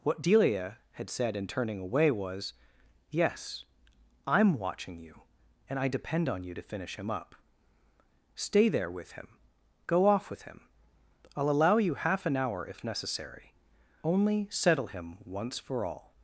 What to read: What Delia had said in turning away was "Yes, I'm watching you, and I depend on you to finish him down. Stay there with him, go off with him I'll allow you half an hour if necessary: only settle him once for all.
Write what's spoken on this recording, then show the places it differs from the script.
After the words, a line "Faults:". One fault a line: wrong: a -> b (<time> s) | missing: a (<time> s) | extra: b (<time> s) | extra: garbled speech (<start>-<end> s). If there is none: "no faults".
What Delia had said in turning away was "Yes, I'm watching you, and I depend on you to finish him up. Stay there with him, go off with him I'll allow you half an hour if necessary: only settle him once for all.
Faults:
wrong: down -> up (7.1 s)